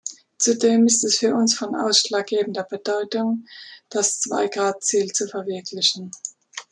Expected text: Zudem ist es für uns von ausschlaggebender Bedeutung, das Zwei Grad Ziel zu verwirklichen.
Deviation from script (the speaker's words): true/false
false